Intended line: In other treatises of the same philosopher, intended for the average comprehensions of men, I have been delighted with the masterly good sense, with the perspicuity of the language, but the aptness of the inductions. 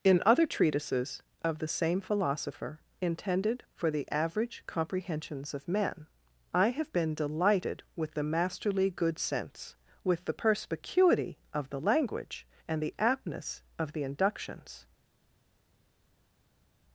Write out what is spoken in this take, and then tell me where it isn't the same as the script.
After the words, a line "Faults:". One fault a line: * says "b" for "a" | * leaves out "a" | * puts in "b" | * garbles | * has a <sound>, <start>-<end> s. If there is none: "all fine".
In other treatises of the same philosopher, intended for the average comprehensions of men, I have been delighted with the masterly good sense, with the perspicuity of the language, and the aptness of the inductions.
Faults:
* says "and" for "but"